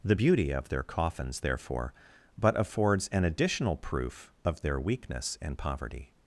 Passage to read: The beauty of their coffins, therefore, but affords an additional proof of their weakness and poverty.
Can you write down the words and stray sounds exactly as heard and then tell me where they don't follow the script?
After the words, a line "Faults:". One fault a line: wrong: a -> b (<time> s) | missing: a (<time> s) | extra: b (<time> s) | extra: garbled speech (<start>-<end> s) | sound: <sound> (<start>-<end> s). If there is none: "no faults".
The beauty of their coffins, therefore, but affords an additional proof of their weakness and poverty.
Faults:
no faults